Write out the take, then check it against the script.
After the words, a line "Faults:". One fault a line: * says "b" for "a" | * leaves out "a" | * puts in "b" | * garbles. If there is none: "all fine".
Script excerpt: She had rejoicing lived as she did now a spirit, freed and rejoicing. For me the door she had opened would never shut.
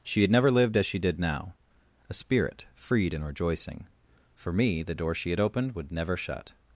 She had never lived as she did now a spirit, freed and rejoicing. For me the door she had opened would never shut.
Faults:
* says "never" for "rejoicing"